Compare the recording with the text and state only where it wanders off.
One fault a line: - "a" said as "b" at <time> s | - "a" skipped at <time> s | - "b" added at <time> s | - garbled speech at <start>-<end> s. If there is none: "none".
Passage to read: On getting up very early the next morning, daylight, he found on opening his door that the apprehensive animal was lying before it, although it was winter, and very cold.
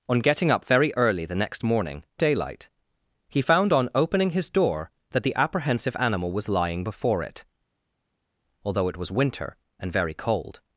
none